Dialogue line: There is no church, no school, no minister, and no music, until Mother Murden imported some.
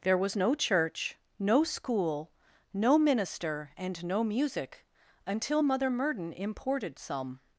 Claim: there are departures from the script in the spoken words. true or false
true